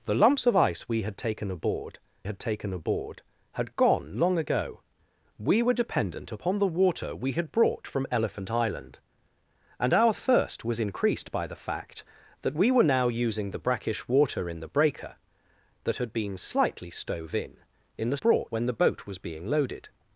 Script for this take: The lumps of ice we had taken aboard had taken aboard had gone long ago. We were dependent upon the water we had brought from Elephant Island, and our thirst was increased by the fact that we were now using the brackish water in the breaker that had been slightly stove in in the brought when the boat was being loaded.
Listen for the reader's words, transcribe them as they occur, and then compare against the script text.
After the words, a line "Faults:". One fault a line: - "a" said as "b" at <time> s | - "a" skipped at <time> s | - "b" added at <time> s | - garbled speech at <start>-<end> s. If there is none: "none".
The lumps of ice we had taken aboard had taken aboard had gone long ago. We were dependent upon the water we had brought from Elephant Island, and our thirst was increased by the fact that we were now using the brackish water in the breaker that had been slightly stove in in the brought when the boat was being loaded.
Faults:
none